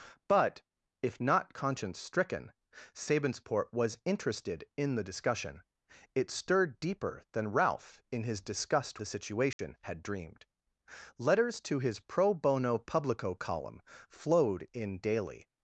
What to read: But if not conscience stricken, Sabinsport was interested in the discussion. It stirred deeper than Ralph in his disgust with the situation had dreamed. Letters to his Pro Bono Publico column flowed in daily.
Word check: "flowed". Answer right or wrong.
right